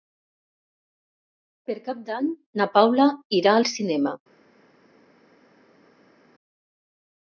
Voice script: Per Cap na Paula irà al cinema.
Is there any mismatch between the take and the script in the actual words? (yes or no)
yes